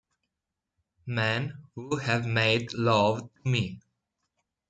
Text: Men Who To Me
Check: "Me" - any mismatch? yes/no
no